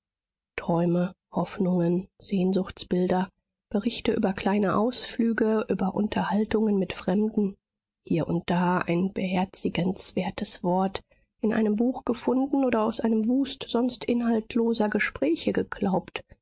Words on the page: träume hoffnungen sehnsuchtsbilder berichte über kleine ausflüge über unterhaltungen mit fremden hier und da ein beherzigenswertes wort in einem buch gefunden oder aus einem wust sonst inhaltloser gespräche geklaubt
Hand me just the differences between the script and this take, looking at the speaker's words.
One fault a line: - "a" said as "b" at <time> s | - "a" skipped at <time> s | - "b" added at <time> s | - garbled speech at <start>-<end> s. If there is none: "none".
none